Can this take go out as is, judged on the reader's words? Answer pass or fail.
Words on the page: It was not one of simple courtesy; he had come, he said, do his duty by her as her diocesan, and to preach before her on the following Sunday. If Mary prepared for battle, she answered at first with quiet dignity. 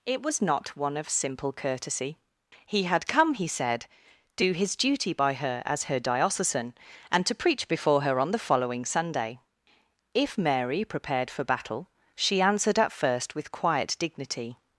pass